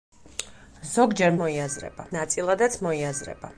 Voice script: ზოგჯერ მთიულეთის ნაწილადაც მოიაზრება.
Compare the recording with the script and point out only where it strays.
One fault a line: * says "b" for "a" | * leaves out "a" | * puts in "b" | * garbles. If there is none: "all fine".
* says "მოიაზრება" for "მთიულეთის"